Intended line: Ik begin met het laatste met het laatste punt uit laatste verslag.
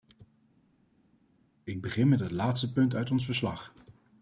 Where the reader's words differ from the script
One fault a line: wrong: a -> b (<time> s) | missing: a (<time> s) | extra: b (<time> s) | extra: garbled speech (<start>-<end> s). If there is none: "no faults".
missing: met het laatste (2.7 s)
wrong: laatste -> ons (3.1 s)